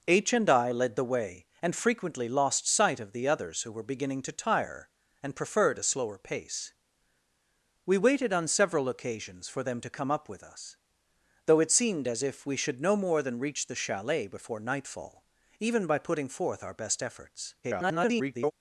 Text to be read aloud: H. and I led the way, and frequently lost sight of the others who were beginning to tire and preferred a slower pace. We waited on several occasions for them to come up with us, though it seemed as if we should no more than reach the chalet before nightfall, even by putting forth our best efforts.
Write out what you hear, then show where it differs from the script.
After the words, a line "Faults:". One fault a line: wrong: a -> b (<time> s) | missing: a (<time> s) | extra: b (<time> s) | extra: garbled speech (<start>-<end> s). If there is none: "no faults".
H. and I led the way, and frequently lost sight of the others who were beginning to tire and preferred a slower pace. We waited on several occasions for them to come up with us, though it seemed as if we should no more than reach the chalet before nightfall, even by putting forth our best efforts. [garbled]
Faults:
extra: garbled speech (17.6-18.5 s)